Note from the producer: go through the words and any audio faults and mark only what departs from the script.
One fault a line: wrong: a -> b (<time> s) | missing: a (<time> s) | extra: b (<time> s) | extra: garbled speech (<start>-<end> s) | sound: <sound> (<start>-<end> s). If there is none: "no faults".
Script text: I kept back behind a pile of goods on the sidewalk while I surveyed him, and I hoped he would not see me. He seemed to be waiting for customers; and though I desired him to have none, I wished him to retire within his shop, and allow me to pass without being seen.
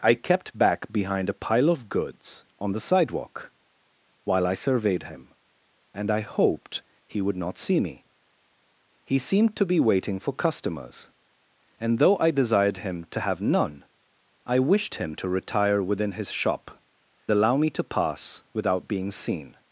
missing: and (16.8 s)